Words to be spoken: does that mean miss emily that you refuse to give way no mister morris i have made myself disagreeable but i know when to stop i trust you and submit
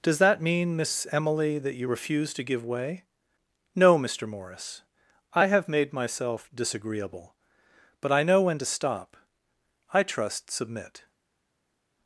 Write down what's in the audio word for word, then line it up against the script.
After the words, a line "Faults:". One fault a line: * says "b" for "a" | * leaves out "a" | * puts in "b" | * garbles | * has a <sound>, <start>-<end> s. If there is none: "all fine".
does that mean miss emily that you refuse to give way no mister morris i have made myself disagreeable but i know when to stop i trust submit
Faults:
* leaves out "you and"